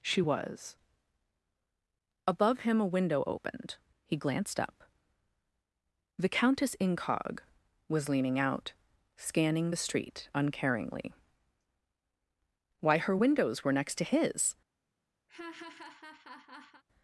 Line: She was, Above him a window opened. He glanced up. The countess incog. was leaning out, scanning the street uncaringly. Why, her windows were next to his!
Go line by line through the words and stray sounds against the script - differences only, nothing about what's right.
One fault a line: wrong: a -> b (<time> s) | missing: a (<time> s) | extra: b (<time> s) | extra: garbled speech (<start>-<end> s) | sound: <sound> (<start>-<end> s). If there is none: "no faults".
sound: laugh (15.3-16.8 s)